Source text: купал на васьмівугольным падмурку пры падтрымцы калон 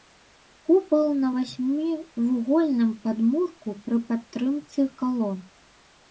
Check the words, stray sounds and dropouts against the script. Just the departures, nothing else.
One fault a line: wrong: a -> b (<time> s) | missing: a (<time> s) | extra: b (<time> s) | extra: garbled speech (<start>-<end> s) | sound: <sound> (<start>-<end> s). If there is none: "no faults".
no faults